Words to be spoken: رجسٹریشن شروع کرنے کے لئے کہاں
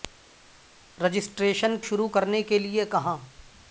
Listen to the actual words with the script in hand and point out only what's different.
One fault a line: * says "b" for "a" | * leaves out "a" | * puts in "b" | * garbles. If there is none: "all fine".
all fine